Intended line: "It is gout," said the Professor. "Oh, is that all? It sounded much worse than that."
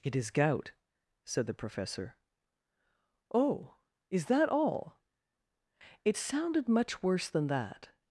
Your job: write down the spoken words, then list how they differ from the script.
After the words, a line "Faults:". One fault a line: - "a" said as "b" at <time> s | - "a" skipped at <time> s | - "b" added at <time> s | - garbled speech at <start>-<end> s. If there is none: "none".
"It is gout," said the Professor. "Oh, is that all? It sounded much worse than that."
Faults:
none